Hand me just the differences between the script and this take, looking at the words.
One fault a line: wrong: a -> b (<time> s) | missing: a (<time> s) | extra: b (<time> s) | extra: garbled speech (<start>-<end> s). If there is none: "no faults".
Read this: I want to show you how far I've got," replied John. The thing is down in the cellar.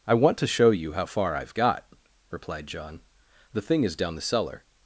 missing: in (4.2 s)